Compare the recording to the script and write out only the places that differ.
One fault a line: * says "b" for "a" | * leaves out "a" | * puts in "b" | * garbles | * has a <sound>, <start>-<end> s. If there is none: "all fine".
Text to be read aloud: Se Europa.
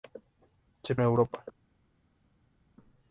all fine